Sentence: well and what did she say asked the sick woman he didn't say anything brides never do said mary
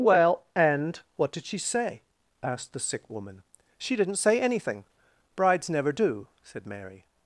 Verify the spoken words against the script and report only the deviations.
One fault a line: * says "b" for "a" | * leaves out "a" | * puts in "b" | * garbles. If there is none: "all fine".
* says "she" for "he"